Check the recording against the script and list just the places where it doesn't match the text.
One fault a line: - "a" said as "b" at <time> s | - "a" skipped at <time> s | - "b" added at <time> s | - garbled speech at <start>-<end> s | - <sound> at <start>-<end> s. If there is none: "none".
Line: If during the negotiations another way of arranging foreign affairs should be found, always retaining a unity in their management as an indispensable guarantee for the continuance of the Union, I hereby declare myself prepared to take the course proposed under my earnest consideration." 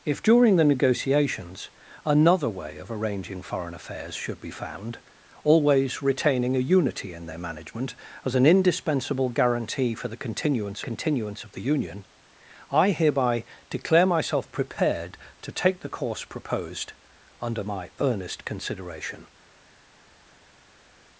- "continuance" added at 10.8 s